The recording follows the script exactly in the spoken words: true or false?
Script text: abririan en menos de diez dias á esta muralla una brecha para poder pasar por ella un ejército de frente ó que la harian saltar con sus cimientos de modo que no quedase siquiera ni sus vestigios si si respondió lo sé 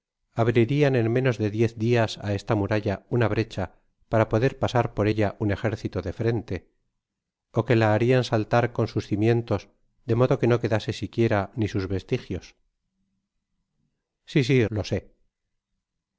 false